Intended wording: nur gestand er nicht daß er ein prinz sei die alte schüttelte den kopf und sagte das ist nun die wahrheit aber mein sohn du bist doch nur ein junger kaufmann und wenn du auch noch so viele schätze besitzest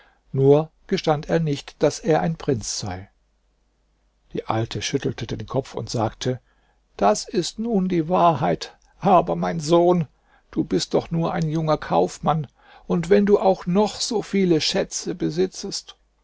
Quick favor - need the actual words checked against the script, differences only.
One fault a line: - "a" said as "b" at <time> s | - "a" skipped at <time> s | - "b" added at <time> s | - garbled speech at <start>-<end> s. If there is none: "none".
none